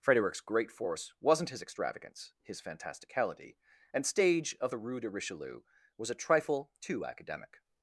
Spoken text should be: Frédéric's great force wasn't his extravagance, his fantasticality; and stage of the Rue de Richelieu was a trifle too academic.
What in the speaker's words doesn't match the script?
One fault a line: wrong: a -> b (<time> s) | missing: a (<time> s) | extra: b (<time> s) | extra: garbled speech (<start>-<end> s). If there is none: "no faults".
no faults